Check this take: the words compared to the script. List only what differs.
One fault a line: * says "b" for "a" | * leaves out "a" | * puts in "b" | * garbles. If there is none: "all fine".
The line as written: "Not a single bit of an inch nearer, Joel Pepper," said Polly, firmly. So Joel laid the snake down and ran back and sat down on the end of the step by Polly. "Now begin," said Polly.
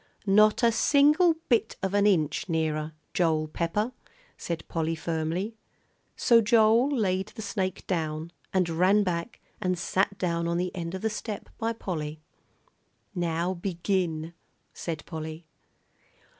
all fine